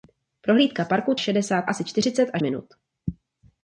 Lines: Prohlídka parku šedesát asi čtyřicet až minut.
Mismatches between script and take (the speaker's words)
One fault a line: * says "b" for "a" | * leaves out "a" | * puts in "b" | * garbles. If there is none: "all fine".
all fine